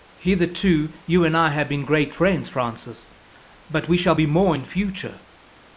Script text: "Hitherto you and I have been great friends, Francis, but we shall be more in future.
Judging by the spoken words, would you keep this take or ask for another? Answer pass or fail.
pass